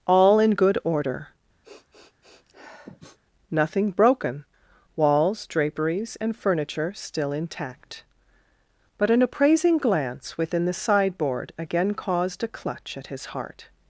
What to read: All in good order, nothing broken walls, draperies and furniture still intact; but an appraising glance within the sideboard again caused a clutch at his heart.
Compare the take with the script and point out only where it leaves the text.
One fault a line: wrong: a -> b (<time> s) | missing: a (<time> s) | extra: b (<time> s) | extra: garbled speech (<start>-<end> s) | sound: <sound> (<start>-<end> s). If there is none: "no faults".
sound: sniff (1.6-3.2 s)